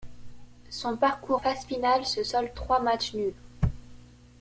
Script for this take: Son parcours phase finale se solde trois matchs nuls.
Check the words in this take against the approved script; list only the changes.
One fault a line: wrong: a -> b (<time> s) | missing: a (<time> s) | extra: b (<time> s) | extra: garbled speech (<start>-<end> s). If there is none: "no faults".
no faults